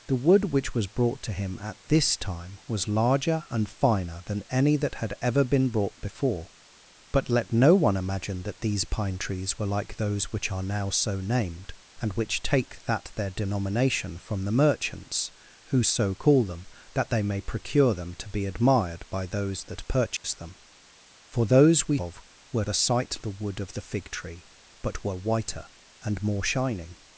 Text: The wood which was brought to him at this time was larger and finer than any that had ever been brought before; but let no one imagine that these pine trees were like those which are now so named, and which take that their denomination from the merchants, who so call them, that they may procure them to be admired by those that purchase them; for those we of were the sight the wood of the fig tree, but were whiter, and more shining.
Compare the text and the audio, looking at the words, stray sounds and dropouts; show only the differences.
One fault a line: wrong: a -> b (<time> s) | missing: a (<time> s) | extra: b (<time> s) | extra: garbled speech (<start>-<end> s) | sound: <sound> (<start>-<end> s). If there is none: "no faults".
sound: dropout (20.2-20.2 s)